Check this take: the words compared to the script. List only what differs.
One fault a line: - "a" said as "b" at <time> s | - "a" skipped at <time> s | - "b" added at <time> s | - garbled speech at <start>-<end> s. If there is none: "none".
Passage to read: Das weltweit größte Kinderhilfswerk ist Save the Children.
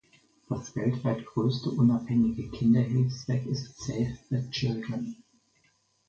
- "unabhängige" added at 1.7 s